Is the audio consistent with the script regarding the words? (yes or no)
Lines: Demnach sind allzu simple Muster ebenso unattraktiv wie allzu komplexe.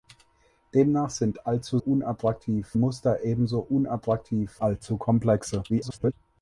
no